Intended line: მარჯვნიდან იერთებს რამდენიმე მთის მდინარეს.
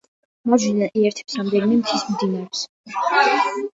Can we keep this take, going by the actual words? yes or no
yes